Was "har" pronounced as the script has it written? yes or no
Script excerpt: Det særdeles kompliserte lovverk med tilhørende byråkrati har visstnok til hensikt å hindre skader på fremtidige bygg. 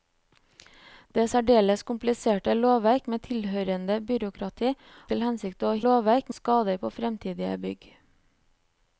no